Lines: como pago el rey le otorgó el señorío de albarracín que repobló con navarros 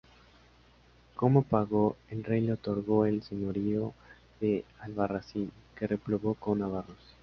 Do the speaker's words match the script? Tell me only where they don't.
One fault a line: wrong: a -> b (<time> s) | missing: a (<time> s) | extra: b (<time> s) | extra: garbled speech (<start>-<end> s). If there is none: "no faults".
no faults